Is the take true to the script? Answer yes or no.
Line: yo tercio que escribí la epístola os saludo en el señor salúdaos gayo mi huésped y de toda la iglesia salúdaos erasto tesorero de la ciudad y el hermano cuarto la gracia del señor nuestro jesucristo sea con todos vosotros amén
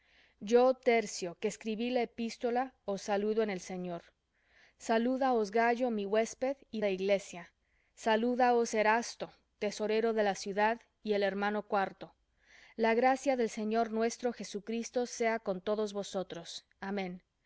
no